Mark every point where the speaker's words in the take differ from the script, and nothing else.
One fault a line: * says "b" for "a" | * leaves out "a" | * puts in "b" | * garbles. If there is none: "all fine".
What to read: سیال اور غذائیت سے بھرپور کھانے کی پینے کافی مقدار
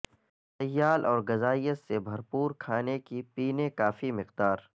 all fine